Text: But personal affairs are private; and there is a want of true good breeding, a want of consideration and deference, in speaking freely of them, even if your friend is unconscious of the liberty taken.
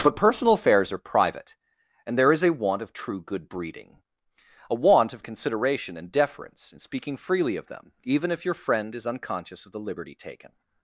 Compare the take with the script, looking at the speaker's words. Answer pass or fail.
pass